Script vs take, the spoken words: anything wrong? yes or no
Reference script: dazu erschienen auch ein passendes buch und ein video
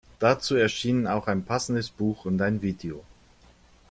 no